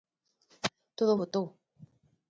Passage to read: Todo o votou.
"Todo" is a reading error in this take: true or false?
false